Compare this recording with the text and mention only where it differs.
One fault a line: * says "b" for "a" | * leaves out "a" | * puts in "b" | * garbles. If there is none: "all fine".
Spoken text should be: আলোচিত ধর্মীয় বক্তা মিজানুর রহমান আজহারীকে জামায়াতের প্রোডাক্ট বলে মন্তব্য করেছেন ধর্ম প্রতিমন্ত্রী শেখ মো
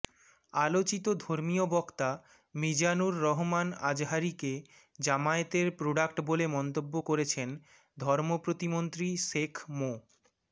all fine